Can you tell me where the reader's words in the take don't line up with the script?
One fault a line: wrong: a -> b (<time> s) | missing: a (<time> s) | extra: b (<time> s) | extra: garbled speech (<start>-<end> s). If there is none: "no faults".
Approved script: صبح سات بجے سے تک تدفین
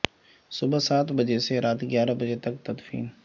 extra: رات گیارہ بجے (1.6 s)